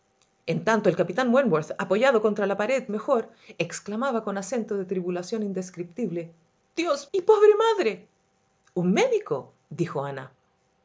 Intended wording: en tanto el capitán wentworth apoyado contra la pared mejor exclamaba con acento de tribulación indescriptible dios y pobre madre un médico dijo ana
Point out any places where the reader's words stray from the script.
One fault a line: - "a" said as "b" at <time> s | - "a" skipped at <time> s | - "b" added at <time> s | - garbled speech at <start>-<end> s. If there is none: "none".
none